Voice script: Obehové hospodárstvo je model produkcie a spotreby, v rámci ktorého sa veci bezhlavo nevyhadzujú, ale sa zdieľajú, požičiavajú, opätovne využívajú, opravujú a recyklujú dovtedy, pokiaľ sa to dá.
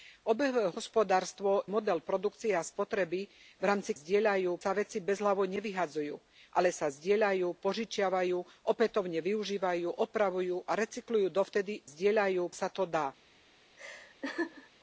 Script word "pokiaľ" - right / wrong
wrong